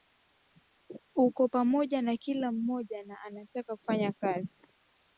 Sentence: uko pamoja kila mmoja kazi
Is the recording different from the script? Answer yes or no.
yes